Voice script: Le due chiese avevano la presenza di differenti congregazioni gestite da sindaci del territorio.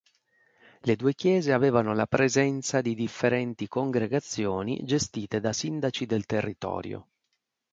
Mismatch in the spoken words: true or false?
false